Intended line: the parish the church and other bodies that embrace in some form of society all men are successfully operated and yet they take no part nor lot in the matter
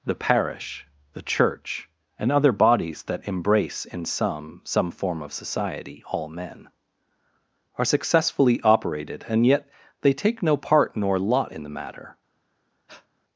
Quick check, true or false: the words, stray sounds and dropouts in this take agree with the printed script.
false